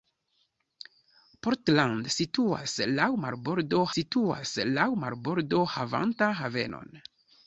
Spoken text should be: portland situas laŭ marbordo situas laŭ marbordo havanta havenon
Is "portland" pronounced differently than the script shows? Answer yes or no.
no